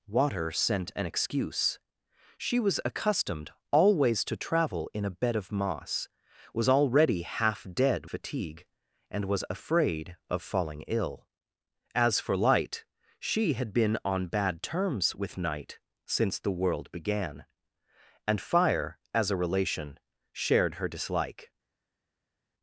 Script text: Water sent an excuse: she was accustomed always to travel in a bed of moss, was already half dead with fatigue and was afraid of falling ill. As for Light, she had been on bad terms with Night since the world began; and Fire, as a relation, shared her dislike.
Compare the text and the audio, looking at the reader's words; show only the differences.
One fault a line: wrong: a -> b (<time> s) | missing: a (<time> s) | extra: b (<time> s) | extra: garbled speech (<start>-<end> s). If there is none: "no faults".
missing: with (8.1 s)